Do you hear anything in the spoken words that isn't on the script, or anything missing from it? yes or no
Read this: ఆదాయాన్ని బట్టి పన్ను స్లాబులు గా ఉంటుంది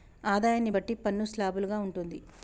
no